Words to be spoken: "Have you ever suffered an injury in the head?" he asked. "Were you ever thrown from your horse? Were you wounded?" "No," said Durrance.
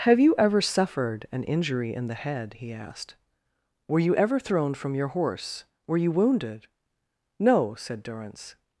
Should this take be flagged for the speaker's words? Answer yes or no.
no